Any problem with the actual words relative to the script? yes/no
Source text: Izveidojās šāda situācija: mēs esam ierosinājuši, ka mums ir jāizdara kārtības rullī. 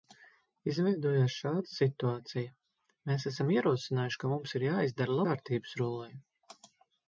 no